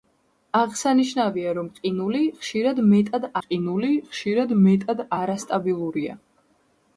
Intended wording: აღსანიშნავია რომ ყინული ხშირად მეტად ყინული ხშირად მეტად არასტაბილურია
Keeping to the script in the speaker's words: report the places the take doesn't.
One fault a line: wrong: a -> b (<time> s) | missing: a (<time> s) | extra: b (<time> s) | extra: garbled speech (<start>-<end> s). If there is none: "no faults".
no faults